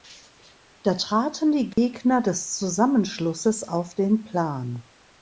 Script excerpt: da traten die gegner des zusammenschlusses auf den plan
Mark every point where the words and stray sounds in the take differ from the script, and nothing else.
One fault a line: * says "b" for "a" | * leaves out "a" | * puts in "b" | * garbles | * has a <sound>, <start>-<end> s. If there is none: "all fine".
* has a dropout, 1.7-1.8 s